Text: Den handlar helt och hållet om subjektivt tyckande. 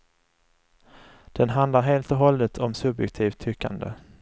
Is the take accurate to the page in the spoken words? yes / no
yes